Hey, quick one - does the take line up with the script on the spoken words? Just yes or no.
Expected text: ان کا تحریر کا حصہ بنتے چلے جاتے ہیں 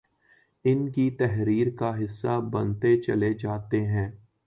no